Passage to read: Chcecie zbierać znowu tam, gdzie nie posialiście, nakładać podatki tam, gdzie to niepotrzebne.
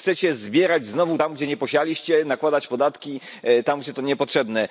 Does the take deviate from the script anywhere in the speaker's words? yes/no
no